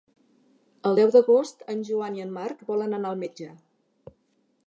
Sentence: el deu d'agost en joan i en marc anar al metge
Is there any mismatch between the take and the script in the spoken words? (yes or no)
yes